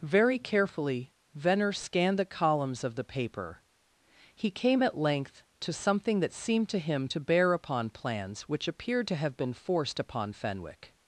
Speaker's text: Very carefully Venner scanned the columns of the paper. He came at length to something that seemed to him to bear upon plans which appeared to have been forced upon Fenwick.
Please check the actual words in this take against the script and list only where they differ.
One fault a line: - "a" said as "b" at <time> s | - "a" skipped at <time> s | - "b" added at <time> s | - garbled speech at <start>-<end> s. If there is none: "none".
none